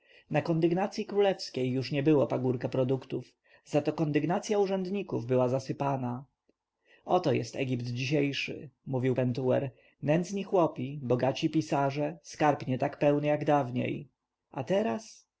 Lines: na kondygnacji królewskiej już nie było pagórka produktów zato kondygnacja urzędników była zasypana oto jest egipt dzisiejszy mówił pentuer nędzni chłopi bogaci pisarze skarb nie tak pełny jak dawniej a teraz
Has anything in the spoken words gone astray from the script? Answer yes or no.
no